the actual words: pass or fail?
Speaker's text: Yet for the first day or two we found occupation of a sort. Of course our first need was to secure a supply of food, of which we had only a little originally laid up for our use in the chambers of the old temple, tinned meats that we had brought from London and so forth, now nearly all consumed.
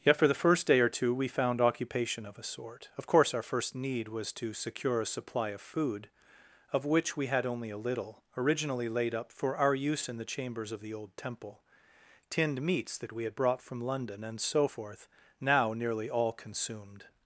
pass